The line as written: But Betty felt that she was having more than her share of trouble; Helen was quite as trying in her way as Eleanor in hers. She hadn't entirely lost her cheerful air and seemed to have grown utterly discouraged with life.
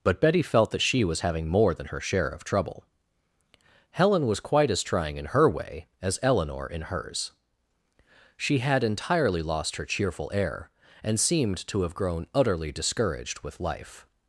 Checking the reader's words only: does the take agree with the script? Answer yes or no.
no